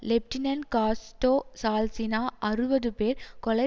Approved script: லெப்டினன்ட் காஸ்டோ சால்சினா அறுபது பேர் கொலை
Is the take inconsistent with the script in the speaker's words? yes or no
no